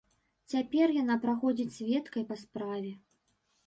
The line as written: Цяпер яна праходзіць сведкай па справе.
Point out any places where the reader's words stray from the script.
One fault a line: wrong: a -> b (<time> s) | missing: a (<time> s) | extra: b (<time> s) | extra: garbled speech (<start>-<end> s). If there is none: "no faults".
no faults